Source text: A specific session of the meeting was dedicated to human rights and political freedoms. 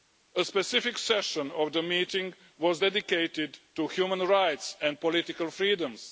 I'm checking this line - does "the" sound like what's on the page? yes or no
yes